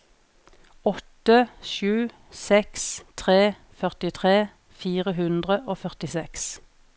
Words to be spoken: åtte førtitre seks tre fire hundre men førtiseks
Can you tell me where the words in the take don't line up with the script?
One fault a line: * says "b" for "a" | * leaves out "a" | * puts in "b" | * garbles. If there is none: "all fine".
* says "sju" for "førtitre"
* puts in "førtitre"
* says "og" for "men"